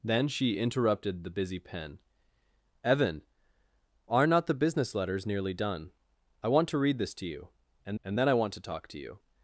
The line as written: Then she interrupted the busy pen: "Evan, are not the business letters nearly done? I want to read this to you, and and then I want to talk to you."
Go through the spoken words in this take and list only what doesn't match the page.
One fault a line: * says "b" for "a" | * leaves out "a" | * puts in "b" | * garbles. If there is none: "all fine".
all fine